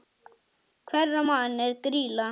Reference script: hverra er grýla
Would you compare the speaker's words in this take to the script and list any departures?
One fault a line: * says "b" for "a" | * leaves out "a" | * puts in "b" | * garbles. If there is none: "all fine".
* puts in "manna"